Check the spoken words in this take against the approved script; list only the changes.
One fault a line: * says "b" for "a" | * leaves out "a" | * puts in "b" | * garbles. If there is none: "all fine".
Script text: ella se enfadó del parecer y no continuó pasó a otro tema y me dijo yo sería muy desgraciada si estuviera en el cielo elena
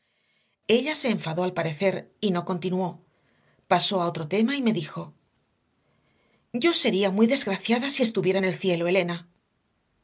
* says "al" for "del"